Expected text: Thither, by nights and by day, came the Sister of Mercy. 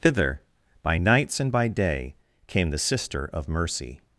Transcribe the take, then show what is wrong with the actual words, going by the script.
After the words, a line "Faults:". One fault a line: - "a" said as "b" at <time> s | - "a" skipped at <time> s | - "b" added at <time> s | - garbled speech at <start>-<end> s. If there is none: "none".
Thither, by nights and by day, came the Sister of Mercy.
Faults:
none